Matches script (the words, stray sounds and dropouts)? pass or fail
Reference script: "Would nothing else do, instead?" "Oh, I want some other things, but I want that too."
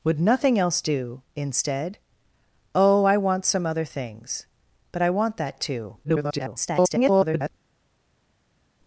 fail